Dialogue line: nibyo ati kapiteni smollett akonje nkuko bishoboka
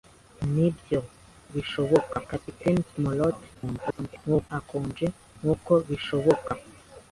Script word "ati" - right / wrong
wrong